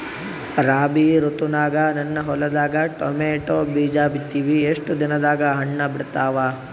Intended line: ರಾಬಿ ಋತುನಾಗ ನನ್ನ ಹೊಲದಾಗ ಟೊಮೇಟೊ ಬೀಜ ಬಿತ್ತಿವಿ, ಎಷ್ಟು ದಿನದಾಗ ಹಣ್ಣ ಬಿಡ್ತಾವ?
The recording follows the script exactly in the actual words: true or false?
true